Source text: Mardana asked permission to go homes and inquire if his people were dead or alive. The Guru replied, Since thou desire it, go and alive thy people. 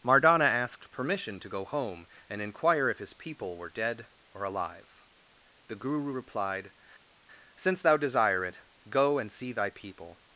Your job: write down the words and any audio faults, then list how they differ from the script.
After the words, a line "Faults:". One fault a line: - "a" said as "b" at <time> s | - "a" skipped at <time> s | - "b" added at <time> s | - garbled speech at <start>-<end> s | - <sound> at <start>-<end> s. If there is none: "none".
Mardana asked permission to go home and inquire if his people were dead or alive. The Guru replied, Since thou desire it, go and see thy people.
Faults:
- "homes" said as "home" at 1.6 s
- "alive" said as "see" at 9.3 s